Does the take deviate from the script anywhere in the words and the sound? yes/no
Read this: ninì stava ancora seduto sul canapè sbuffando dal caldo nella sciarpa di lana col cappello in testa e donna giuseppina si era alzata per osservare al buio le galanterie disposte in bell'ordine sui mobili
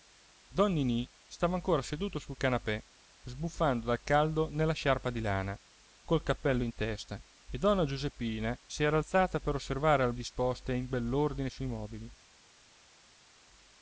yes